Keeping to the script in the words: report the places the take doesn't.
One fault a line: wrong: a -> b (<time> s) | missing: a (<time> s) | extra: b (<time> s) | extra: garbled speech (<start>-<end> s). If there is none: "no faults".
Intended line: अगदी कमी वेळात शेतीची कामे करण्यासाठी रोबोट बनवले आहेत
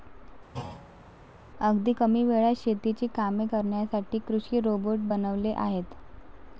extra: कृषी (4.2 s)